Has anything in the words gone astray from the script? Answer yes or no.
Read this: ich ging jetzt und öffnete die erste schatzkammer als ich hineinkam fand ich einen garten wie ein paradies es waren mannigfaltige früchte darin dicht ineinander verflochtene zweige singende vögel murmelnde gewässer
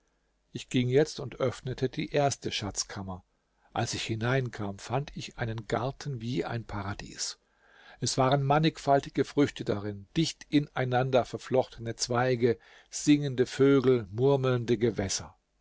no